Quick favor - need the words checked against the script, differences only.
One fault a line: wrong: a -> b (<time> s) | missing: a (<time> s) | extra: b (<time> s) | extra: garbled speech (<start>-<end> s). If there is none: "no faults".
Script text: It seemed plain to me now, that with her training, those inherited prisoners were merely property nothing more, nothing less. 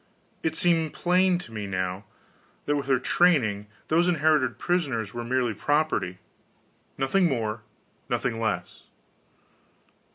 no faults